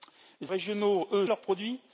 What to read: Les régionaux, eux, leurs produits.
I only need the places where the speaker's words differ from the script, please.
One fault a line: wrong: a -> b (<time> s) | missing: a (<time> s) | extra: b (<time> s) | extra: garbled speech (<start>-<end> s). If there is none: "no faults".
no faults